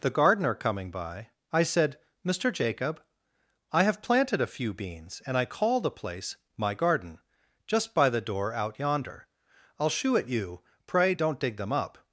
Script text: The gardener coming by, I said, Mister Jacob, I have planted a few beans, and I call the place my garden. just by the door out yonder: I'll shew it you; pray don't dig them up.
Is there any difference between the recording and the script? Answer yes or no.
no